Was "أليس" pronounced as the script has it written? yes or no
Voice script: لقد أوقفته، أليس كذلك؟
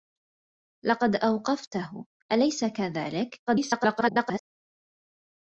yes